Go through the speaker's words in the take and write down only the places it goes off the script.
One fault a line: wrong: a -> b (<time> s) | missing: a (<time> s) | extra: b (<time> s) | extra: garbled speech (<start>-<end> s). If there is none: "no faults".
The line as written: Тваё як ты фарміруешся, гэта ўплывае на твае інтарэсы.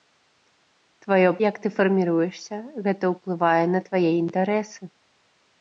no faults